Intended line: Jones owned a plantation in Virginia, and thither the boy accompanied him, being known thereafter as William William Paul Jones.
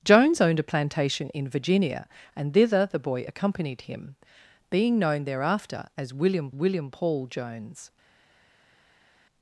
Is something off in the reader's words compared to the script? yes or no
no